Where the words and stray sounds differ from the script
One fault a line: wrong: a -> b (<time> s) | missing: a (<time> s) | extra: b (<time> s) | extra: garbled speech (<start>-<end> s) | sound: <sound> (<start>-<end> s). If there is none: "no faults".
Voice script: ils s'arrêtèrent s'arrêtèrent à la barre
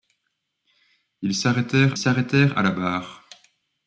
no faults